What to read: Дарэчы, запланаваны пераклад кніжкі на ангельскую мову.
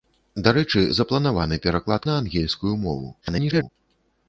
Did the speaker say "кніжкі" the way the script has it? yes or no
no